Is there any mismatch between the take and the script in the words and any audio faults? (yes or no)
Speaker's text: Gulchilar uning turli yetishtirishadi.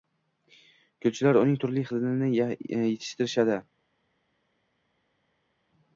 yes